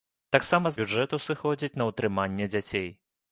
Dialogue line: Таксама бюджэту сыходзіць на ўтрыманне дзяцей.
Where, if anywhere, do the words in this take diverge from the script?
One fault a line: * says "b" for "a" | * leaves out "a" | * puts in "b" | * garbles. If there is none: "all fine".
all fine